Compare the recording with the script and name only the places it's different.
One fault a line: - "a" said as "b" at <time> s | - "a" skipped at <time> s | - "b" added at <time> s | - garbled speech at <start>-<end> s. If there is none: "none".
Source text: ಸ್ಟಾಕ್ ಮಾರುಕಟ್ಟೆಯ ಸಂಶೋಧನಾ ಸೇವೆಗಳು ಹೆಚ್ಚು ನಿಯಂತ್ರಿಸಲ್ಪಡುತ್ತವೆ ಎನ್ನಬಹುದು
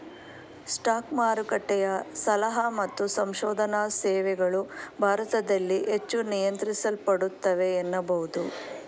- "ಸಲಹಾ ಮತ್ತು" added at 2.2 s
- "ಭಾರತದಲ್ಲಿ" added at 5.0 s